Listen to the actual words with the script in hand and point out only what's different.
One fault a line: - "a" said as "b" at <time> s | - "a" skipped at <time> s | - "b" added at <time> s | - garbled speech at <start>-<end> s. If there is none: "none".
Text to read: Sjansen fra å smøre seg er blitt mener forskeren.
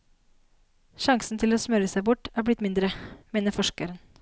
- "fra" said as "til" at 1.4 s
- "bort" added at 2.1 s
- "mindre" added at 2.6 s